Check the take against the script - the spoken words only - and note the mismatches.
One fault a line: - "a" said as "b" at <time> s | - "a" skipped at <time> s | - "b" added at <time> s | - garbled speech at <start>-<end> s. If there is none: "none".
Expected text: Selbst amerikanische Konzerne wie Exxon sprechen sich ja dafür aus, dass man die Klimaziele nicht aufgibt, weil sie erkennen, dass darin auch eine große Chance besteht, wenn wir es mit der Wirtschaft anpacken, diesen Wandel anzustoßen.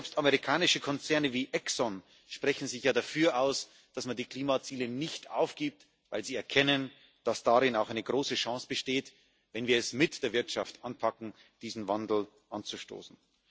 none